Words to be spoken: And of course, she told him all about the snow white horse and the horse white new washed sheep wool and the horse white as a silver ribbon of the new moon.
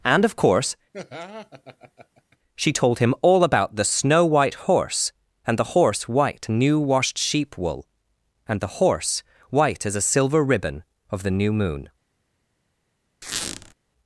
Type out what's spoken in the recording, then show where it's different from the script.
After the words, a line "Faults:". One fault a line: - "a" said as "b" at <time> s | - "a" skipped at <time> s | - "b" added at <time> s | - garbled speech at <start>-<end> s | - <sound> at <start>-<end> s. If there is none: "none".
And of course, she told him all about the snow white horse and the horse white new washed sheep wool and the horse white as a silver ribbon of the new moon.
Faults:
- laugh at 0.9-2.4 s
- squeak at 13.2-13.7 s